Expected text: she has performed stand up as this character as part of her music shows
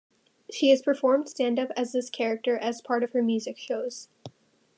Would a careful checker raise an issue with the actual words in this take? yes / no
no